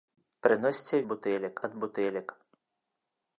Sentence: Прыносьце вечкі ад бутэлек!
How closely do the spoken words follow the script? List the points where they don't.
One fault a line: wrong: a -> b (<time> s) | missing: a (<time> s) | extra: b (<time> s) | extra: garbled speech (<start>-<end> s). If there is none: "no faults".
wrong: вечкі -> бутэлек (1.1 s)